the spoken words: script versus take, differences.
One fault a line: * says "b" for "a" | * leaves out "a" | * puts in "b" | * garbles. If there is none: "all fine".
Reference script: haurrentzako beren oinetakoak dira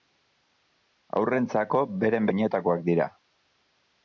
all fine